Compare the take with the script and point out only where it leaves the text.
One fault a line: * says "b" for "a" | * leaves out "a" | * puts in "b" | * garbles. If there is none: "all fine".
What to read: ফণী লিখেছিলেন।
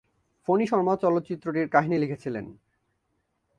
* puts in "শর্মা চলচ্চিত্রটির কাহিনী"